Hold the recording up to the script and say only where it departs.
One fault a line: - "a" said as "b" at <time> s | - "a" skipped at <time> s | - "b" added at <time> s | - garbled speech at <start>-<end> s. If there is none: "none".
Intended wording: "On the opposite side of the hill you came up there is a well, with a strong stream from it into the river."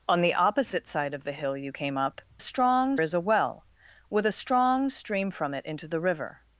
- "there" said as "strong" at 2.4 s